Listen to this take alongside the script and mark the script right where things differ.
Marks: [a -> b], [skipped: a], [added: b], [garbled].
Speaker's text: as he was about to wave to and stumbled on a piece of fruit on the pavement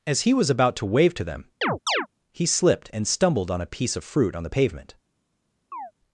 as he was about to wave to [added: them he slipped] and stumbled on a piece of fruit on the pavement